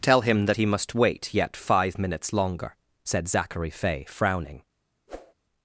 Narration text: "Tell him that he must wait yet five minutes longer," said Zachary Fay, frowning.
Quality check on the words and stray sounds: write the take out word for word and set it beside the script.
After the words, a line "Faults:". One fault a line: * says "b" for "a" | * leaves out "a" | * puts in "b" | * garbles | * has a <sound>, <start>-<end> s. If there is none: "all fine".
"Tell him that he must wait yet five minutes longer," said Zachary Fay, frowning.
Faults:
* has a whoosh, 5.1-5.3 s